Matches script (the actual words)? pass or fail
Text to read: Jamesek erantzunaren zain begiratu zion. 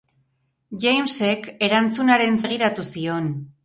fail